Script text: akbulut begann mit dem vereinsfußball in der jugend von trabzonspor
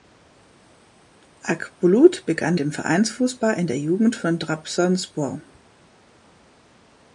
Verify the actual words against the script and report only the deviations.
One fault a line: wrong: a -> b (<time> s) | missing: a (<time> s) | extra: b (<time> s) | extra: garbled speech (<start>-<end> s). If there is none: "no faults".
missing: mit (2.5 s)